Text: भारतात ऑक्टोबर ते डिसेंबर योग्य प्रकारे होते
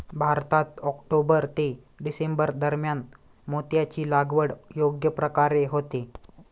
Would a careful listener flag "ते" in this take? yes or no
no